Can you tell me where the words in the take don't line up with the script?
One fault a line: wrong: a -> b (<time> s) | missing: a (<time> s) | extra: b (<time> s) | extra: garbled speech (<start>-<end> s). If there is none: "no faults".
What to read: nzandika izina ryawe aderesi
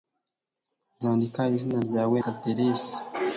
no faults